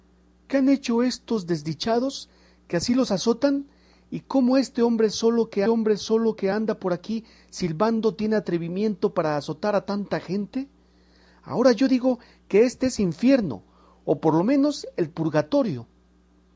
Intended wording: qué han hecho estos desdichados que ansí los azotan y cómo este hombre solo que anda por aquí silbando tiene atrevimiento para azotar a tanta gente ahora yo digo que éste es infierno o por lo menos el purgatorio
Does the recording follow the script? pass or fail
fail